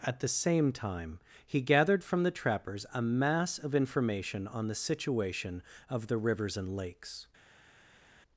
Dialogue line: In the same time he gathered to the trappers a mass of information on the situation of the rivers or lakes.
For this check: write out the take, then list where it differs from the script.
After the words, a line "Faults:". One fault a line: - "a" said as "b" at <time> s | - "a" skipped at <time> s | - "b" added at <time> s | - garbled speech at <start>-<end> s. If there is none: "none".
At the same time he gathered from the trappers a mass of information on the situation of the rivers and lakes.
Faults:
- "In" said as "At" at 0.0 s
- "to" said as "from" at 2.0 s
- "or" said as "and" at 6.6 s